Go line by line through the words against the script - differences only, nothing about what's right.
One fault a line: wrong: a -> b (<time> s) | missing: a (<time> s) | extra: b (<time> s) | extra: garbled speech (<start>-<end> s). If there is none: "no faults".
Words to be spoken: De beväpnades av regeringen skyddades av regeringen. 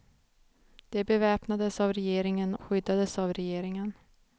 no faults